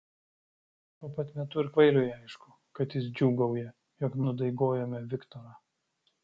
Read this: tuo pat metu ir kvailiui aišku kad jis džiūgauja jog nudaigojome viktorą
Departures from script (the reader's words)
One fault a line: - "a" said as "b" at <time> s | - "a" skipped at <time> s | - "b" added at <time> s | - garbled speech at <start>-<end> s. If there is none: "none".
none